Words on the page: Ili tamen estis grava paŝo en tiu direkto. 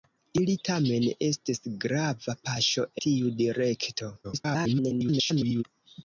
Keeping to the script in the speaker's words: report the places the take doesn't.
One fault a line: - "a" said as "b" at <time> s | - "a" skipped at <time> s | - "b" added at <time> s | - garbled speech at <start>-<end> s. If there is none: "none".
- "en" skipped at 2.9 s
- garbled speech at 4.2-5.6 s